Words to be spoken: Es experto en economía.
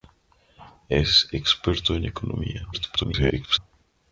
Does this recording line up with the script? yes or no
no